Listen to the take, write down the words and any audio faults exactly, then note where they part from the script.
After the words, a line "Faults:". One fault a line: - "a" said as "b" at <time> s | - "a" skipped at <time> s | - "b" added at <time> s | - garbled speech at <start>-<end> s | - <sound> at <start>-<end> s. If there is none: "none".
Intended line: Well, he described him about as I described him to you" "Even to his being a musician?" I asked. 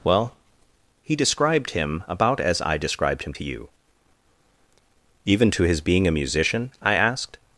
Well, he described him about as I described him to you" "Even to his being a musician?" I asked.
Faults:
none